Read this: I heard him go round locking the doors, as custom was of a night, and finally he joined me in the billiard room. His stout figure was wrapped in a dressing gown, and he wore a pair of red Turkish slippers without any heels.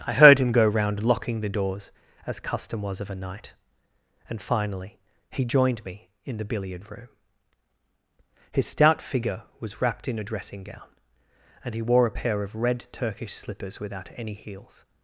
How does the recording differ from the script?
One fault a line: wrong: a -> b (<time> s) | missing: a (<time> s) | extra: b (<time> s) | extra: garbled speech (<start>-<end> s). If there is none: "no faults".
no faults